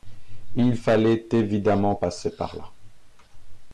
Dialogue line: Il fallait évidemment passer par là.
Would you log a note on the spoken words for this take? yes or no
no